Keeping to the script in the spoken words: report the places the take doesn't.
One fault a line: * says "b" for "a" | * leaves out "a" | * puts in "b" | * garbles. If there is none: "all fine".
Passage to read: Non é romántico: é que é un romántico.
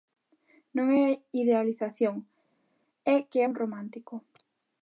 * says "idealización" for "romántico"